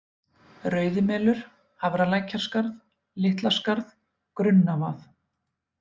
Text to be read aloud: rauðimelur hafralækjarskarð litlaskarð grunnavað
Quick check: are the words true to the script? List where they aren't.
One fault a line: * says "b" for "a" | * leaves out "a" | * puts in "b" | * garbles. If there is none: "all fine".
all fine